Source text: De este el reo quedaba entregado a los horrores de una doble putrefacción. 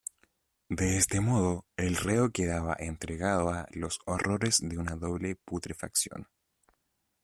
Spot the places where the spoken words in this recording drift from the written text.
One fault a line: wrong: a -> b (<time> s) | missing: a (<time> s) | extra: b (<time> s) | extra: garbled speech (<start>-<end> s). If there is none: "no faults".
extra: modo (1.2 s)